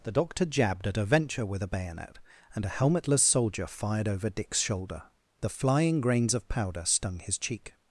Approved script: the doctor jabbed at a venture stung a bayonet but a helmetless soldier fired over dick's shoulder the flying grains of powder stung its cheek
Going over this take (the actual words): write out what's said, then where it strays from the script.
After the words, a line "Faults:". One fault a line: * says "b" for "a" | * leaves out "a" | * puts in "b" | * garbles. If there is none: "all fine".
the doctor jabbed at a venture with a bayonet and a helmetless soldier fired over dick's shoulder the flying grains of powder stung his cheek
Faults:
* says "with" for "stung"
* says "and" for "but"
* says "his" for "its"